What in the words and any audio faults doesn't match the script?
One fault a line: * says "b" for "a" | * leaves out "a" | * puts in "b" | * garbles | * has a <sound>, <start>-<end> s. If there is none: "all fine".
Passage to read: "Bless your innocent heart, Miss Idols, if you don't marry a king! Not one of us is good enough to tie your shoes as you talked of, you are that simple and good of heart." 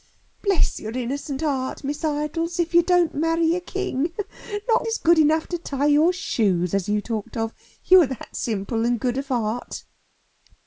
* leaves out "one of us"